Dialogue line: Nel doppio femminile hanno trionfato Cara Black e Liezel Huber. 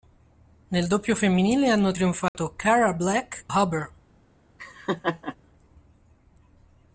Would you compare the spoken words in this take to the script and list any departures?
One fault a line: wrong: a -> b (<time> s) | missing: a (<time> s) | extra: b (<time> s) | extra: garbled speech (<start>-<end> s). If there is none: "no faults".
missing: e Liezel (3.5 s)